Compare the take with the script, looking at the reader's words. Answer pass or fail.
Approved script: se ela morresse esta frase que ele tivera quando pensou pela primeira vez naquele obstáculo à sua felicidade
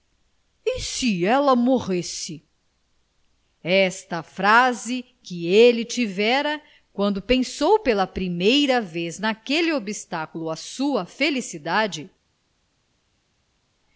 pass